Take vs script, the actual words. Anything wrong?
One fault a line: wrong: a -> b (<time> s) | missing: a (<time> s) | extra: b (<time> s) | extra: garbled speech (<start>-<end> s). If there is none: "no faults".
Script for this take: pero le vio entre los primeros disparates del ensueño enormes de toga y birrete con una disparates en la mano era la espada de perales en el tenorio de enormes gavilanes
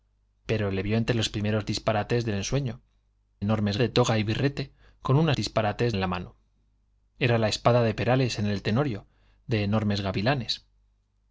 no faults